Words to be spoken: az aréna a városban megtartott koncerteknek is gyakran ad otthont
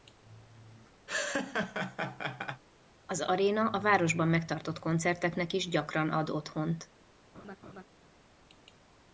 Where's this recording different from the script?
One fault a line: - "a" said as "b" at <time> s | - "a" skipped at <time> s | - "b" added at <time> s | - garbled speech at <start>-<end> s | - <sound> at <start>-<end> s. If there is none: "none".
- laugh at 1.1-2.6 s
- laugh at 7.3-7.8 s